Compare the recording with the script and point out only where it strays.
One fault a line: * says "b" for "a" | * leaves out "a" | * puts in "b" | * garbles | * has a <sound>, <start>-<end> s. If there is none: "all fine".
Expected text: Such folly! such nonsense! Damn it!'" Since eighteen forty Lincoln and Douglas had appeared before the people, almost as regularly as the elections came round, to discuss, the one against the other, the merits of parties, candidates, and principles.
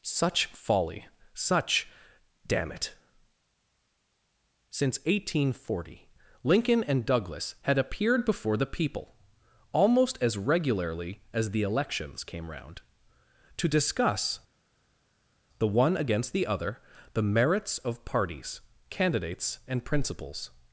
* leaves out "nonsense"